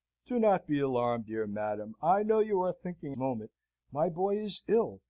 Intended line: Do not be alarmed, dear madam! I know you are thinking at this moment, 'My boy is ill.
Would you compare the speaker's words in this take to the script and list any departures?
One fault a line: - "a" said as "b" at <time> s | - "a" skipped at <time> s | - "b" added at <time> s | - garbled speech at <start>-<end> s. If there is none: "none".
- "at this" skipped at 3.2 s